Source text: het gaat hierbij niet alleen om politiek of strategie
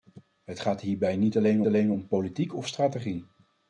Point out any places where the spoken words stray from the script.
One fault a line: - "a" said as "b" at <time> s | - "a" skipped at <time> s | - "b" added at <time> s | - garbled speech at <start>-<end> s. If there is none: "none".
- "alleen" added at 1.7 s